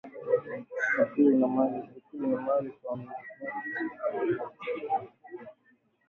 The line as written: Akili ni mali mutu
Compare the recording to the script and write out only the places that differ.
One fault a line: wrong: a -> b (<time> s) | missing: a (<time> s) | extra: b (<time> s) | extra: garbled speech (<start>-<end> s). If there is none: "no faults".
extra: kwa (2.7 s)